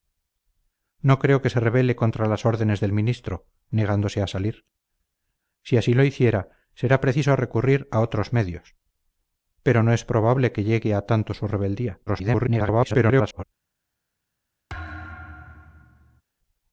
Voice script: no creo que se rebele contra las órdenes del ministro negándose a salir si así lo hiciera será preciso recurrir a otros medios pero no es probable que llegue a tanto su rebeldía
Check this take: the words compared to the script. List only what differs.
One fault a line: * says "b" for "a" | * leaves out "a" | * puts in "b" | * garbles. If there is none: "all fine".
* garbles